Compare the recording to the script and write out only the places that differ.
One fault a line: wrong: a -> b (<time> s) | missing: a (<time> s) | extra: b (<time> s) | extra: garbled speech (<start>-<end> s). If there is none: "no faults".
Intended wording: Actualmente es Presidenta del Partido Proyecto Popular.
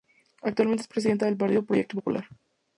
no faults